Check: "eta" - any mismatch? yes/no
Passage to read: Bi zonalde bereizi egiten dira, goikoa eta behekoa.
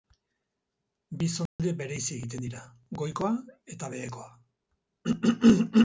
no